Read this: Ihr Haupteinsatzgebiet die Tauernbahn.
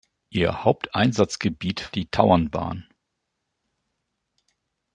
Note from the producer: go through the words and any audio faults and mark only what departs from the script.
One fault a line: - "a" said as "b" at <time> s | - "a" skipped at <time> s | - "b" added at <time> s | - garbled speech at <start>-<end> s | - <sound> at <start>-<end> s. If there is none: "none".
none